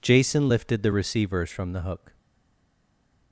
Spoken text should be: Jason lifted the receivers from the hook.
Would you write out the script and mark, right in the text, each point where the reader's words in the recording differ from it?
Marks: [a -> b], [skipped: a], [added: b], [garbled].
Jason lifted the receivers from the hook.